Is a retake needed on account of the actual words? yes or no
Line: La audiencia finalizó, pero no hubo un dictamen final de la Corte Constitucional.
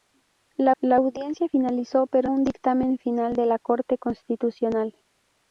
yes